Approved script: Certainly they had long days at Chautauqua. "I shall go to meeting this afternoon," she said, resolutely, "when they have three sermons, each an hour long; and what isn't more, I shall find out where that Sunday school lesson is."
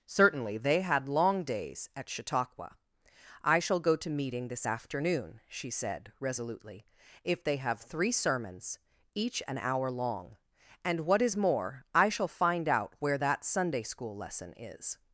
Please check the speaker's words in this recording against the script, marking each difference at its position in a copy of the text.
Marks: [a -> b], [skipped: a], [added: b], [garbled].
Certainly they had long days at Chautauqua. "I shall go to meeting this afternoon," she said, resolutely, ["when -> if] they have three sermons, each an hour long; and what [isn't -> is] more, I shall find out where that Sunday school lesson is."